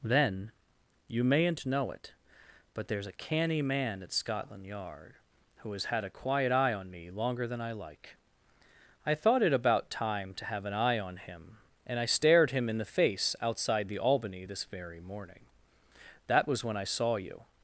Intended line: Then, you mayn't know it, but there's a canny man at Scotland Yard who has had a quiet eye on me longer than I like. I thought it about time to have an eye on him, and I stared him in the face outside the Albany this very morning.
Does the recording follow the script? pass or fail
fail